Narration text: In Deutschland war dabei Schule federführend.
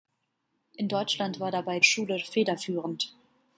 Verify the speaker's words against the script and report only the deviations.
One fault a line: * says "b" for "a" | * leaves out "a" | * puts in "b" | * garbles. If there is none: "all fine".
all fine